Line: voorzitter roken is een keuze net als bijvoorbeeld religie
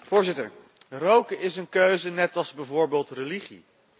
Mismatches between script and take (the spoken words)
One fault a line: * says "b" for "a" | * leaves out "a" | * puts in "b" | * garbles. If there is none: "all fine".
all fine